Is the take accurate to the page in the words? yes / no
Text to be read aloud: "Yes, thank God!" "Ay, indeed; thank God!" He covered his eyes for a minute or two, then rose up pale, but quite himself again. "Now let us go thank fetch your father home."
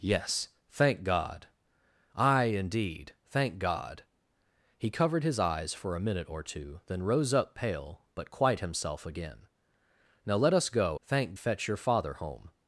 yes